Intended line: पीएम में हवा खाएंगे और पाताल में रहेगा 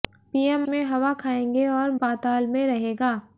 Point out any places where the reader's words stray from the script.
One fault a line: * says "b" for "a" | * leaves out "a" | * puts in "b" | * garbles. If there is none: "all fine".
all fine